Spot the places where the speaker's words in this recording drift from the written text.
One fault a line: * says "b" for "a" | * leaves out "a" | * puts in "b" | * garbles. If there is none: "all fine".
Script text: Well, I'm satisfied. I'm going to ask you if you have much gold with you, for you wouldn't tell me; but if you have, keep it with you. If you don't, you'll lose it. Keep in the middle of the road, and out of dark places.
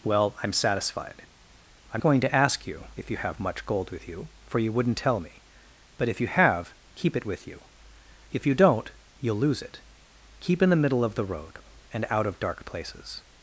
all fine